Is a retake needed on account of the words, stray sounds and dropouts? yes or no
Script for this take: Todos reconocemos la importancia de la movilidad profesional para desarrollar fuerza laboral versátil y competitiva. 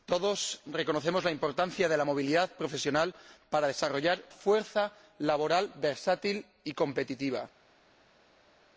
no